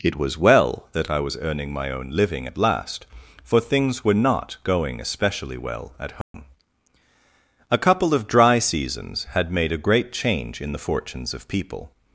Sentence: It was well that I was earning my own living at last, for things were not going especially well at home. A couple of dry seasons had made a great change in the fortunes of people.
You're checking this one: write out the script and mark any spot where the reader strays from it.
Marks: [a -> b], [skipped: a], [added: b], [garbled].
It was well that I was earning my own living at last, for things were not going especially well at home. A couple of dry seasons had made a great change in the fortunes of people.